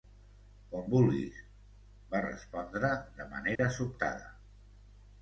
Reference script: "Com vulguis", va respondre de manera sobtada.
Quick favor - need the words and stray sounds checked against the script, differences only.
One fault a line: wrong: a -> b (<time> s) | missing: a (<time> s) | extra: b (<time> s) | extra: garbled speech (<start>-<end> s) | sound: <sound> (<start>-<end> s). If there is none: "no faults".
sound: dropout (3.6-3.6 s)